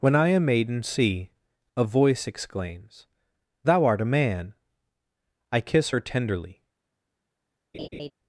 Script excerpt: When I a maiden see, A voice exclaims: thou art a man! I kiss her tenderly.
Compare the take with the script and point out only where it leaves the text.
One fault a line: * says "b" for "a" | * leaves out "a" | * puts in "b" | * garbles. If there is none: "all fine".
all fine